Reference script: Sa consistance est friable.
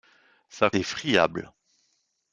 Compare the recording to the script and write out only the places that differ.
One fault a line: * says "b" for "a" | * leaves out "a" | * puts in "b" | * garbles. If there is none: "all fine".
* leaves out "consistance"